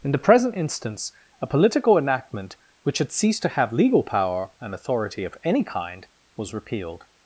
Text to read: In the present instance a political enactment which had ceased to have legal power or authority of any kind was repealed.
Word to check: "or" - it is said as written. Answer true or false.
false